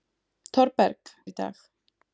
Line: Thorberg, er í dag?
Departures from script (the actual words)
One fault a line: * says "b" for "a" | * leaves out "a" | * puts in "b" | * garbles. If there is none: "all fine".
all fine